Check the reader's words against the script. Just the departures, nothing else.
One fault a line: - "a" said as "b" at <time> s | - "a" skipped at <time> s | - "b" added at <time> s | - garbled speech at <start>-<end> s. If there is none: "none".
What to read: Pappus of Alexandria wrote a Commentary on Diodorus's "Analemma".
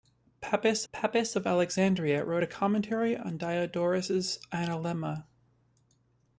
- "pappus" added at 0.9 s